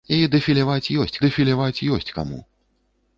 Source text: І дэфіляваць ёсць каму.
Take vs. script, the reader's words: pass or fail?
fail